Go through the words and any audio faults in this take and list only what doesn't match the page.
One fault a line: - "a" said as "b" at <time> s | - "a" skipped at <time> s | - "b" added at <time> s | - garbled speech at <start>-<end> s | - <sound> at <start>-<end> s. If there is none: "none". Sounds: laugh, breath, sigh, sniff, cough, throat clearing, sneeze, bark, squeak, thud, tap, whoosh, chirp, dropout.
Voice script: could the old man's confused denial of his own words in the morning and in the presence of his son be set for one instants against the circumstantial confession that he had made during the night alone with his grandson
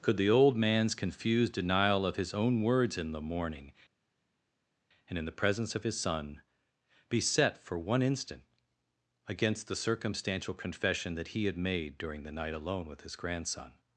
- "instants" said as "instant" at 8.0 s